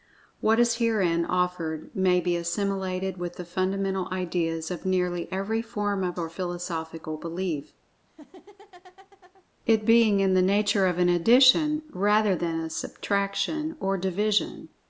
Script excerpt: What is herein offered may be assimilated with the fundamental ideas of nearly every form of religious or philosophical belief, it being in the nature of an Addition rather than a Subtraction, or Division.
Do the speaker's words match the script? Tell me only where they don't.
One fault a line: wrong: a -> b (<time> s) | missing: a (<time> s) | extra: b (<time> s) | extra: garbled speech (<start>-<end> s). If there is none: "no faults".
missing: religious (6.2 s)